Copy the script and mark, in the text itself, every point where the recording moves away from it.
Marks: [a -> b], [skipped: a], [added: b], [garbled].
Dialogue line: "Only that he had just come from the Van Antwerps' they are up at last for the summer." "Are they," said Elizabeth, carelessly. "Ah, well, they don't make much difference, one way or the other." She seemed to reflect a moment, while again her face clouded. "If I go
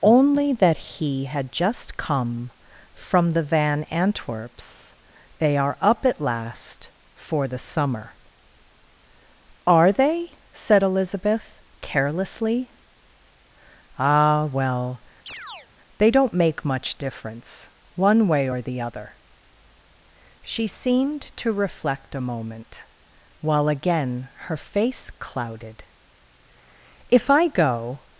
"Only that he had just come from the Van Antwerps' they are up at last for the summer." "Are they," said Elizabeth, carelessly. "Ah, well, they don't make much difference, one way or the other." She seemed to reflect a moment, while again her face clouded. "If I go